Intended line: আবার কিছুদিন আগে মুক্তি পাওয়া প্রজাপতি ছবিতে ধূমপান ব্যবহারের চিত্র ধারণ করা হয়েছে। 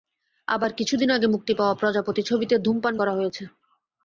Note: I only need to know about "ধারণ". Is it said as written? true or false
false